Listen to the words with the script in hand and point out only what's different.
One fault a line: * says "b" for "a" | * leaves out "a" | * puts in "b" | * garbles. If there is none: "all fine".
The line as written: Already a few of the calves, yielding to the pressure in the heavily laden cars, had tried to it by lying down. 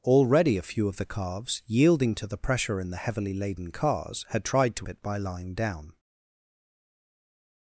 all fine